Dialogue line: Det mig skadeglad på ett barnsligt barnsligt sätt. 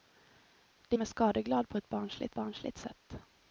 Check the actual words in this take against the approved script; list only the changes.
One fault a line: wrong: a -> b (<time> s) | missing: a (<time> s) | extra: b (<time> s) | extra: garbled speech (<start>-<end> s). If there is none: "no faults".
no faults